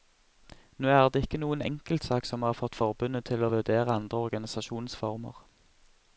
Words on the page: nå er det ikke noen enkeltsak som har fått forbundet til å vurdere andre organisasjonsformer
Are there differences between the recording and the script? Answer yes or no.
no